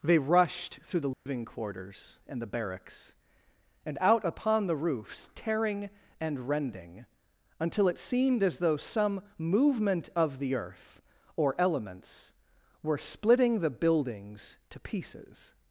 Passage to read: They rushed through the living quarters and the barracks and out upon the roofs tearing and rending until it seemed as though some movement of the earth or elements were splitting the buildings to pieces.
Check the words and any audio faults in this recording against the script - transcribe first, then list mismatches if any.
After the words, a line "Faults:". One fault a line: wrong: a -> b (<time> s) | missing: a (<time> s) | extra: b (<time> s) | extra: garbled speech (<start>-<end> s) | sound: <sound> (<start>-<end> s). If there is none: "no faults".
They rushed through the living quarters and the barracks and out upon the roofs tearing and rending until it seemed as though some movement of the earth or elements were splitting the buildings to pieces.
Faults:
sound: dropout (1.1-1.3 s)